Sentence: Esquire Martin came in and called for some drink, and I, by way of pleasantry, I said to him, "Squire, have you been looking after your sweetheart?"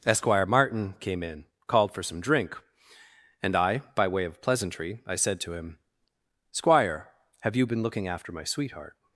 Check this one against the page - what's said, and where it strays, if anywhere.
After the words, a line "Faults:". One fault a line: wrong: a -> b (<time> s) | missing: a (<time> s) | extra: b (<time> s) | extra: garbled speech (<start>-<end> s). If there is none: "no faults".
Esquire Martin came in called for some drink, and I, by way of pleasantry, I said to him, "Squire, have you been looking after my sweetheart?"
Faults:
missing: and (1.4 s)
wrong: your -> my (8.3 s)